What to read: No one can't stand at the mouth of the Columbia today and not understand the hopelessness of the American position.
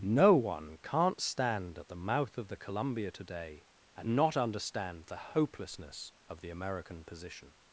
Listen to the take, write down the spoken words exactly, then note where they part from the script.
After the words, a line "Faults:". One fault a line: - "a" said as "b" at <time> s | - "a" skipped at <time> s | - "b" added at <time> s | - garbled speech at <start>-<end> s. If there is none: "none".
No one can't stand at the mouth of the Columbia today and not understand the hopelessness of the American position.
Faults:
none